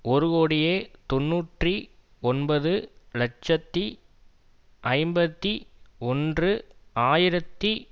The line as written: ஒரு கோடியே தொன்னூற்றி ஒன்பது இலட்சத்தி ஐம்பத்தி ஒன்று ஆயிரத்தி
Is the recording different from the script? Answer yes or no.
no